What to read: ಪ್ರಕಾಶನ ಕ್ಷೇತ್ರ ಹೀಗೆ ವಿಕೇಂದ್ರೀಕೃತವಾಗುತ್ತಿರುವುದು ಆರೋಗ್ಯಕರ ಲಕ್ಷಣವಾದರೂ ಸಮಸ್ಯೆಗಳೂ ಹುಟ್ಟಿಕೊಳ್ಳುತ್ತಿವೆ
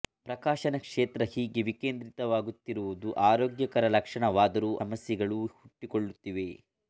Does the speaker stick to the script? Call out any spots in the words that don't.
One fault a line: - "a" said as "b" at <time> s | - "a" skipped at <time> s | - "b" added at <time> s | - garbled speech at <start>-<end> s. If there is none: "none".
none